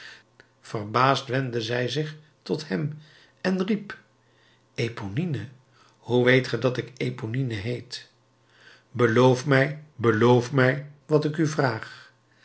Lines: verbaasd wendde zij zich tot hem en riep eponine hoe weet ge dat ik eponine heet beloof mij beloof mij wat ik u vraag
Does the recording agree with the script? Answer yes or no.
yes